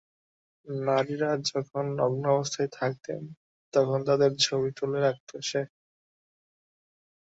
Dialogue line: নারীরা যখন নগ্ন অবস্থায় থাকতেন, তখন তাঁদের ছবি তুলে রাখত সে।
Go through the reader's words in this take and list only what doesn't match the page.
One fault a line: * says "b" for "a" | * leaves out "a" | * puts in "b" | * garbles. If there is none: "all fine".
all fine